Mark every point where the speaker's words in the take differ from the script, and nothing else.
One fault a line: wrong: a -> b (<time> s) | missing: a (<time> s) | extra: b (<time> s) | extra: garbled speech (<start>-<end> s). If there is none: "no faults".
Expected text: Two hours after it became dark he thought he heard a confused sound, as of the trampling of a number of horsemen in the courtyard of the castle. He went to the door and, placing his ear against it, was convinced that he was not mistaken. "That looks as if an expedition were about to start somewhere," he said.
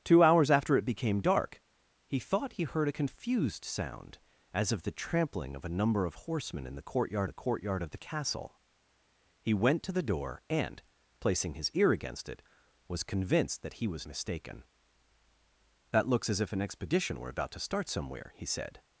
extra: the courtyard (7.3 s)
missing: not (14.1 s)